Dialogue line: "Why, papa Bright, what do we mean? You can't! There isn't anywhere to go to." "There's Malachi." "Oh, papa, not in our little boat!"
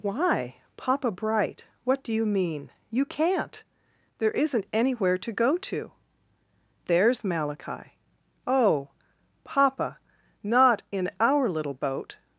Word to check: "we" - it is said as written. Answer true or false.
false